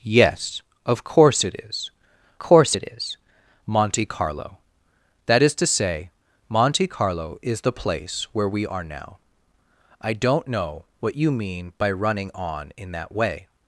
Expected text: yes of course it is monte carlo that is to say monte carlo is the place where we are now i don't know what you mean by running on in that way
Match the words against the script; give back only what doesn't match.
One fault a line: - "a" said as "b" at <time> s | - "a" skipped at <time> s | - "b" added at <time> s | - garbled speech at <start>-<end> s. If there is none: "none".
- "course it is" added at 2.4 s